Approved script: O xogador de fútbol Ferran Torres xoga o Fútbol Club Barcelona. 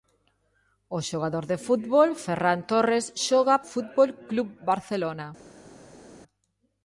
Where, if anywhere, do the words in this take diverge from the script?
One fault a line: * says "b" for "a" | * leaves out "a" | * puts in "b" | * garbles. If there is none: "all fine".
all fine